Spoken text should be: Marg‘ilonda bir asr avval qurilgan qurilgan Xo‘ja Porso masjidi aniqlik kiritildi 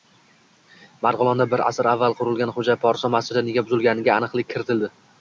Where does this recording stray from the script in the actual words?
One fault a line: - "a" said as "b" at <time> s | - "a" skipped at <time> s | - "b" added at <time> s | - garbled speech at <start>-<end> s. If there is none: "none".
- "qurilgan" skipped at 2.5 s
- "nega buzilganiga" added at 3.5 s